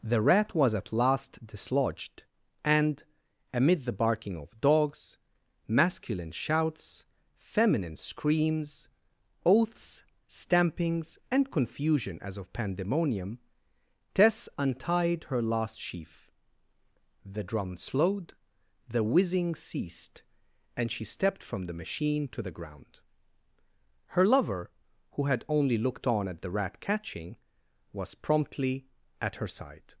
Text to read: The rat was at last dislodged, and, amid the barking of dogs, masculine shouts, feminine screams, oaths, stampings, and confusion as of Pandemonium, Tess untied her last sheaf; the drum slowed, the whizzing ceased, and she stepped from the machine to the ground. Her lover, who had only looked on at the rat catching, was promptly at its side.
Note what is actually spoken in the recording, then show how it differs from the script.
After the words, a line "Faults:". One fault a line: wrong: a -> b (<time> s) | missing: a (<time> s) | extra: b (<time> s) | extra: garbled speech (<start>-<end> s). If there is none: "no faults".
The rat was at last dislodged, and, amid the barking of dogs, masculine shouts, feminine screams, oaths, stampings, and confusion as of Pandemonium, Tess untied her last sheaf; the drum slowed, the whizzing ceased, and she stepped from the machine to the ground. Her lover, who had only looked on at the rat catching, was promptly at her side.
Faults:
wrong: its -> her (29.4 s)